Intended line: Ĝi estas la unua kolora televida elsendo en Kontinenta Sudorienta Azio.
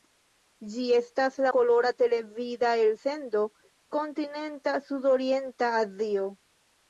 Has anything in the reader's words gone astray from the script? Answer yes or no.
yes